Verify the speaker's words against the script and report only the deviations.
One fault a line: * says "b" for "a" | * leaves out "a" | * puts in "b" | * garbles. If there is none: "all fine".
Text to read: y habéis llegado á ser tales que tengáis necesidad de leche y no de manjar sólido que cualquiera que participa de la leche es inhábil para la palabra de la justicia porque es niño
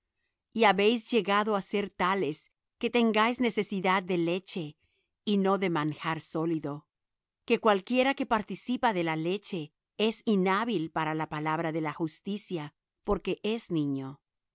all fine